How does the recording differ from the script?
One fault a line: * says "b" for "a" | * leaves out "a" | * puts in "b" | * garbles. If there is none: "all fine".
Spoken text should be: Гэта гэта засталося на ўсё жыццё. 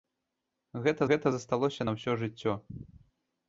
all fine